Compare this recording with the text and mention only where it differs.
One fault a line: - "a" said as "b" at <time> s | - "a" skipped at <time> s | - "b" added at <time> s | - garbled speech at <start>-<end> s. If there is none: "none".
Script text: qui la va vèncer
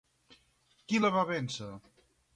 none